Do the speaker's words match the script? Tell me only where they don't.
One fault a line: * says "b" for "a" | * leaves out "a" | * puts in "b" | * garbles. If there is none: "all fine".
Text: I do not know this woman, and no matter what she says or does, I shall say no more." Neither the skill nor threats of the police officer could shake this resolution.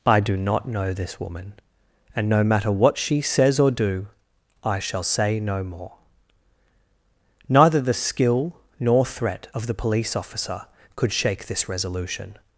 * says "do" for "does"
* says "threat" for "threats"